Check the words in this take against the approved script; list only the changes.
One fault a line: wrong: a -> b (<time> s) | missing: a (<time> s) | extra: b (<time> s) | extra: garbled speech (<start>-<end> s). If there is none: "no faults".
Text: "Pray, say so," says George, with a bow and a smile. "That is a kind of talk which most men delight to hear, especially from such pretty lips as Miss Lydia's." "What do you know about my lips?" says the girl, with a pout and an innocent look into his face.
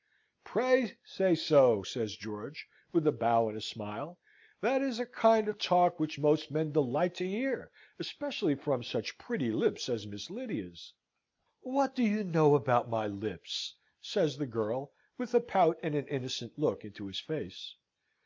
no faults